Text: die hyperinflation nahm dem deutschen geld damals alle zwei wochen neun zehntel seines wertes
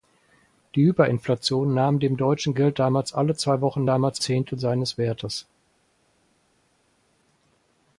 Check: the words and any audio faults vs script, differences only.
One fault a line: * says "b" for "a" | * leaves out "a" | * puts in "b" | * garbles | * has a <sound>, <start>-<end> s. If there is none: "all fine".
* says "damals" for "neun"